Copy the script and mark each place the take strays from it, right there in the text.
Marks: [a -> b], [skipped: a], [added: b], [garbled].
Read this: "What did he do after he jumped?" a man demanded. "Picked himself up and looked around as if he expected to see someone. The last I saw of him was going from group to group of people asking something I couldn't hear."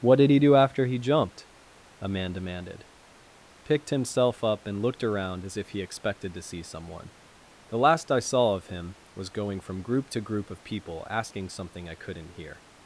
"What did he do after he jumped?" a man demanded. "Picked himself up and looked around as if he expected to see someone. The last I saw of him was going from group to group of people asking something I couldn't hear."